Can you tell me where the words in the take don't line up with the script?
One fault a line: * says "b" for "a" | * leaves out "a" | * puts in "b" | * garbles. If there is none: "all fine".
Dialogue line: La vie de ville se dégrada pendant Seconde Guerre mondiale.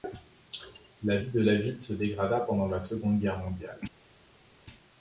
* puts in "la"
* puts in "la"